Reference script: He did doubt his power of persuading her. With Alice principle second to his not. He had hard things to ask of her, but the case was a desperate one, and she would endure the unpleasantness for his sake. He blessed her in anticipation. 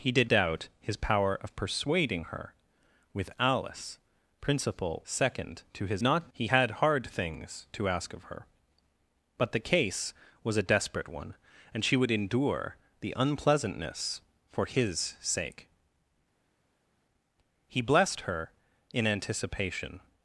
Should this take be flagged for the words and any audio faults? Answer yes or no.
no